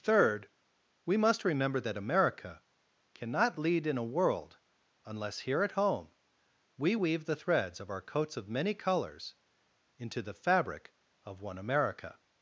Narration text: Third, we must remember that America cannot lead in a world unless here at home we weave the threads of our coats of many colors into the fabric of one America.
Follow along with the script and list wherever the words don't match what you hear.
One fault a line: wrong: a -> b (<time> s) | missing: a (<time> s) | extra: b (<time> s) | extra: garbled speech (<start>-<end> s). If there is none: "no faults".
no faults